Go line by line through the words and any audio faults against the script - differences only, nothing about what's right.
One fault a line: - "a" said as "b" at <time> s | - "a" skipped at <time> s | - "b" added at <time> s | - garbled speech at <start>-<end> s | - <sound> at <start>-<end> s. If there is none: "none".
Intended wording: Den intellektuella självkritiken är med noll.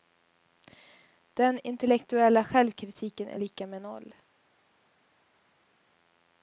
- "lika" added at 3.4 s